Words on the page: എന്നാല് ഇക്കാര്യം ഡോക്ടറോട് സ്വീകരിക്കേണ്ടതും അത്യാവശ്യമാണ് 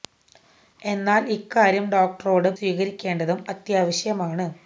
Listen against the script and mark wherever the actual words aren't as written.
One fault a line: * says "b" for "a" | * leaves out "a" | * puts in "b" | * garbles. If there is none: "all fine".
all fine